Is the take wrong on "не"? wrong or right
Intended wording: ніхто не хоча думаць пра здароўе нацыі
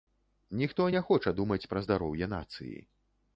right